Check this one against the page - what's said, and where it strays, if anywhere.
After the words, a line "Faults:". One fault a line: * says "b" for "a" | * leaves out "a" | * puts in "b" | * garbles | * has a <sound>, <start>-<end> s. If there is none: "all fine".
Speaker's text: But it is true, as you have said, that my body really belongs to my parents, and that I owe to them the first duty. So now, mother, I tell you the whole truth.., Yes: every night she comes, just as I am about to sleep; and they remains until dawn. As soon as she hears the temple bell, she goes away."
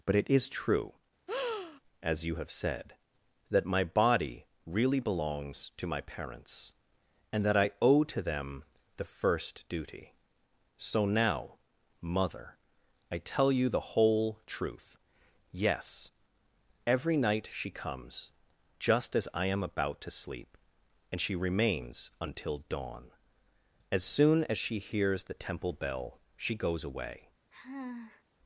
But it is true, as you have said, that my body really belongs to my parents, and that I owe to them the first duty. So now, mother, I tell you the whole truth.., Yes: every night she comes, just as I am about to sleep; and she remains until dawn. As soon as she hears the temple bell, she goes away."
Faults:
* has a breath, 1.3-1.8 s
* says "she" for "they"
* has a sigh, 27.5-28.2 s